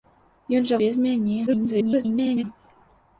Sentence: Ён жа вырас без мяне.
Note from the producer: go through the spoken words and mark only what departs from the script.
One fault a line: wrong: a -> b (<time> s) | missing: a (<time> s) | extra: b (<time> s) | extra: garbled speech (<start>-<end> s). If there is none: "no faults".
missing: вырас (0.8 s)
extra: garbled speech (1.5-2.4 s)